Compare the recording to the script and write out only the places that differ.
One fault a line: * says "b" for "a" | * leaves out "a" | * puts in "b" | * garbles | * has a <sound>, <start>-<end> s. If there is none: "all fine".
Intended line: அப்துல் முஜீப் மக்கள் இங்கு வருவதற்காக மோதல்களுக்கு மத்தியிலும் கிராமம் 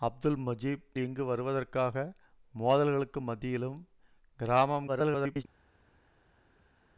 * leaves out "மக்கள்"
* garbles